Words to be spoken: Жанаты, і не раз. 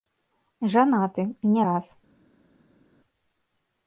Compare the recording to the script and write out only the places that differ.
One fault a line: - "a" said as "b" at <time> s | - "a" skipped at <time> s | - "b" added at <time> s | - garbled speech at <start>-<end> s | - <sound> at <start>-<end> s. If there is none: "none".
none